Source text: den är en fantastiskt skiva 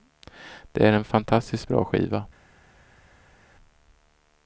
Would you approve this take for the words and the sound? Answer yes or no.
no